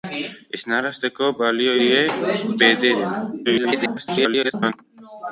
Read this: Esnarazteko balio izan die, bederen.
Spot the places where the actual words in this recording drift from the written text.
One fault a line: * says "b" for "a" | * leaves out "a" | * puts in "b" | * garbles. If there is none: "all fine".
* leaves out "izan"
* garbles